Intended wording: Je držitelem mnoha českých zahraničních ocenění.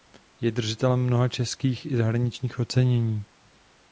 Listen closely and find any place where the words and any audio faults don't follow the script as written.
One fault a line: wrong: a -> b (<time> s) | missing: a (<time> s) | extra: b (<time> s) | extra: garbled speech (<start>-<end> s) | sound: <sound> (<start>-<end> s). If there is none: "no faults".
extra: i (1.9 s)